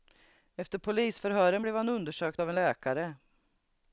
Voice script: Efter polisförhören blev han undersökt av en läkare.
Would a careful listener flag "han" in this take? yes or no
no